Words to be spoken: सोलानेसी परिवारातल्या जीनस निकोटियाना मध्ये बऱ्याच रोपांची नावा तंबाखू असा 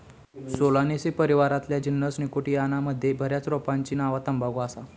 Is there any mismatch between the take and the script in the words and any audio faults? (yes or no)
no